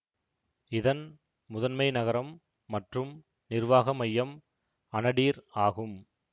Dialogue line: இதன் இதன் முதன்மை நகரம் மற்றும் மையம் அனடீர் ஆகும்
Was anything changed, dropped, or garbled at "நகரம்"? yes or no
no